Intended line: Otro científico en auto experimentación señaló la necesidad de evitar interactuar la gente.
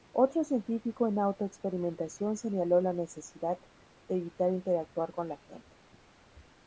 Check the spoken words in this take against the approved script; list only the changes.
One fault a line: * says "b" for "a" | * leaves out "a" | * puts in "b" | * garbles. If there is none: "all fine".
* puts in "con"